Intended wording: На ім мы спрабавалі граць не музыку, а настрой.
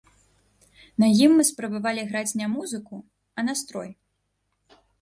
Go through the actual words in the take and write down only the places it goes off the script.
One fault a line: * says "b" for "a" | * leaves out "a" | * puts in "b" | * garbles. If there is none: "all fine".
all fine